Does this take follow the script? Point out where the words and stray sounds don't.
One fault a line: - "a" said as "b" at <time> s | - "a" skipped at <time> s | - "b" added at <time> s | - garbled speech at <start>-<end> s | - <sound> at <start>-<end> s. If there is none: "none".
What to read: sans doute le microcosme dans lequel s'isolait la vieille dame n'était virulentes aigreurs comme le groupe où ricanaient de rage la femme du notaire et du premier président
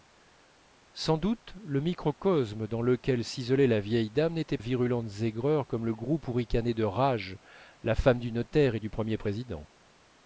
none